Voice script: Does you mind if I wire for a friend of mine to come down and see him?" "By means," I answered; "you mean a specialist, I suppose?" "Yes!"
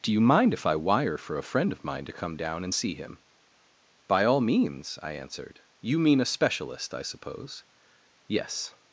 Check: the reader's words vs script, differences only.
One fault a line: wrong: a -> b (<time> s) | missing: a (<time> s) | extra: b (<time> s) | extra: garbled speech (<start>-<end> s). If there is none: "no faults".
wrong: Does -> Do (0.0 s)
extra: all (4.2 s)